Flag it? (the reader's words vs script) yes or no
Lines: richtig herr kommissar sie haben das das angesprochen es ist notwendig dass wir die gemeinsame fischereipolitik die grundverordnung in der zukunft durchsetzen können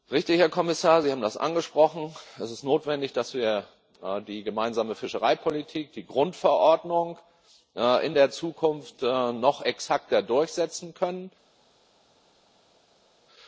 yes